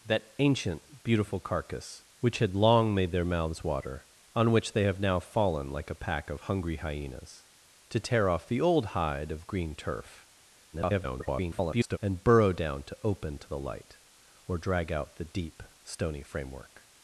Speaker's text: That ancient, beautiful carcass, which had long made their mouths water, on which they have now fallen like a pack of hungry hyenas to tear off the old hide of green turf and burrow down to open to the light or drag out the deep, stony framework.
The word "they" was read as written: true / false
true